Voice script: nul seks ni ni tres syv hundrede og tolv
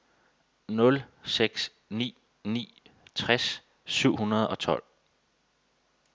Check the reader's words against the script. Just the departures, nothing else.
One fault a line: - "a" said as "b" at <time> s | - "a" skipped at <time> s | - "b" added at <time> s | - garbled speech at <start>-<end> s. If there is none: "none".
none